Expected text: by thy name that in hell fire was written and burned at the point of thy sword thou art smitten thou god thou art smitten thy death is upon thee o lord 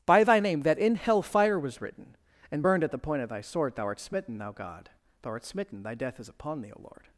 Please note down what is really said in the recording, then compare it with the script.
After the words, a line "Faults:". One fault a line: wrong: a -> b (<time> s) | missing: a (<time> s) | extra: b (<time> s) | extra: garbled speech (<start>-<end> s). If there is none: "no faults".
by thy name that in hell fire was written and burned at the point of thy sword thou art smitten thou god thou art smitten thy death is upon thee o lord
Faults:
no faults